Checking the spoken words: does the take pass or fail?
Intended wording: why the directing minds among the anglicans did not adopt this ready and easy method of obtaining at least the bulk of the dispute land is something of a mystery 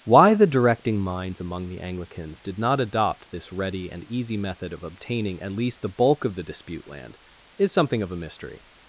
pass